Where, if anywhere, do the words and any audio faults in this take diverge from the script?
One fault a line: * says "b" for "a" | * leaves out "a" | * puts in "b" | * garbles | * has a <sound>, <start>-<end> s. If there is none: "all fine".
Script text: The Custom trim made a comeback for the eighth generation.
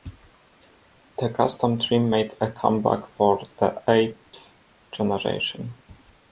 all fine